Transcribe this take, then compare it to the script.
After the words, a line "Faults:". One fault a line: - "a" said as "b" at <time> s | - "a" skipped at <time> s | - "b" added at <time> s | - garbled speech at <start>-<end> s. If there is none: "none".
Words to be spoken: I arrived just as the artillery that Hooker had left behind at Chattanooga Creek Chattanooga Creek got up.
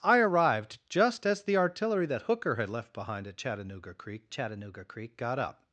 I arrived just as the artillery that Hooker had left behind at Chattanooga Creek Chattanooga Creek got up.
Faults:
none